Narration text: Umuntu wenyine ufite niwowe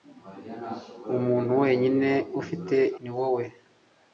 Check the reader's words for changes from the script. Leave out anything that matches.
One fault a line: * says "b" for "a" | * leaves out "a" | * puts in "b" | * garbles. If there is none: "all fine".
all fine